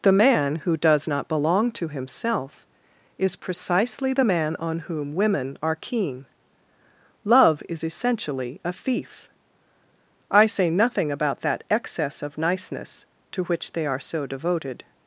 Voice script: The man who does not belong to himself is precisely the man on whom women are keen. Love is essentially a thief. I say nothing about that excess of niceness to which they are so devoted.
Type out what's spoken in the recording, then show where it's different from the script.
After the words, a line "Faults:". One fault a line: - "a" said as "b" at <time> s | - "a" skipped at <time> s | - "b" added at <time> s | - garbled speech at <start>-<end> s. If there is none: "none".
The man who does not belong to himself is precisely the man on whom women are keen. Love is essentially a thief. I say nothing about that excess of niceness to which they are so devoted.
Faults:
none